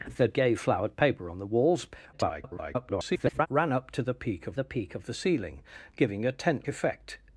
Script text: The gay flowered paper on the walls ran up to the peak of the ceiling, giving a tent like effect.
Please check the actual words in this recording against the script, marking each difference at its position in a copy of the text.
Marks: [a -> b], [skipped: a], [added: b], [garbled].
The gay flowered paper on the walls [garbled] ran up to the peak of the [added: peak of the] ceiling, giving a tent [skipped: like] effect.